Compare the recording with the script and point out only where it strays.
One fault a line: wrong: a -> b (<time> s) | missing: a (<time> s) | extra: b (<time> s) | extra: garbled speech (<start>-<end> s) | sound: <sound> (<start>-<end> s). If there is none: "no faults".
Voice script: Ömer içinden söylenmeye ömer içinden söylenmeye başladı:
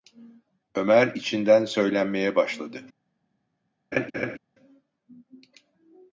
missing: ömer içinden söylenmeye (2.3 s)
sound: laugh (3.9-4.4 s)